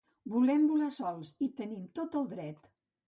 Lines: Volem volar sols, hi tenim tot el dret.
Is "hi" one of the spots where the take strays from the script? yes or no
no